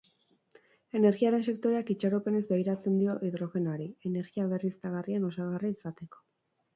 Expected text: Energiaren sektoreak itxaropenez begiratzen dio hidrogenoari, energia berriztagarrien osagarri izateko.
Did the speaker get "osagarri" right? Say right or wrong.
right